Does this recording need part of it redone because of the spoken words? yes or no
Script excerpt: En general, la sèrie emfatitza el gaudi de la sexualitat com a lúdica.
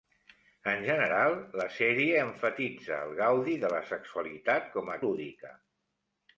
no